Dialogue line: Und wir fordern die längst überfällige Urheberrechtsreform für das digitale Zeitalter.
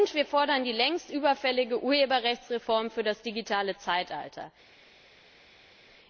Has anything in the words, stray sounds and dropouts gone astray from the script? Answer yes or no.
no